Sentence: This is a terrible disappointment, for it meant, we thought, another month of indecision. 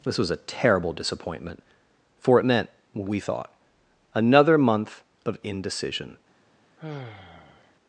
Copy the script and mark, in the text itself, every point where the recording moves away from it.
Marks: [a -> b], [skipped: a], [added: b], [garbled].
This [is -> was] a terrible disappointment, for it meant, we thought, another month of indecision.